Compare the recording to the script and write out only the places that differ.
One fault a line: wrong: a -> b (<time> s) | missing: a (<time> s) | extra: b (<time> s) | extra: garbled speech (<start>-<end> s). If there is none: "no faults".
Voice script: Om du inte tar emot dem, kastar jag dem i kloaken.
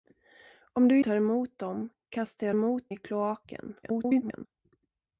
missing: inte (1.0 s)
wrong: dem -> emot (2.5 s)
extra: garbled speech (3.8-4.5 s)